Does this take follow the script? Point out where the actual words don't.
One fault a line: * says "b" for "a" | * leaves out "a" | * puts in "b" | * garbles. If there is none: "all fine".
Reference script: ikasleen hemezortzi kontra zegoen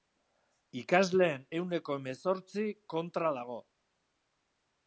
* puts in "ehuneko"
* says "dago" for "zegoen"